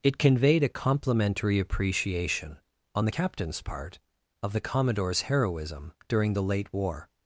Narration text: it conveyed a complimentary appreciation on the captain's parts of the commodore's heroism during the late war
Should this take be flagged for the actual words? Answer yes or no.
yes